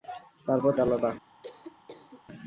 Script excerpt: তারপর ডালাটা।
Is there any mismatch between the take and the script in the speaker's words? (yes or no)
no